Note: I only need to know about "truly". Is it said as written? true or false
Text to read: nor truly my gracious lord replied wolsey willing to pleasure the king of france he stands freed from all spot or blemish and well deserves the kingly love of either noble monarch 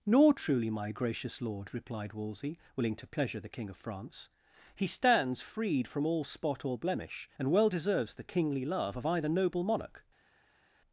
true